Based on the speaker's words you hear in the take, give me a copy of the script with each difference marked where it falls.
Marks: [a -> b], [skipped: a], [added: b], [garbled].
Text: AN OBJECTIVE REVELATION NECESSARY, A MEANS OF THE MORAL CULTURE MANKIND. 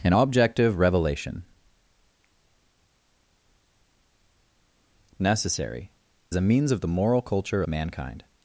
AN OBJECTIVE REVELATION NECESSARY, A MEANS OF THE MORAL CULTURE MANKIND.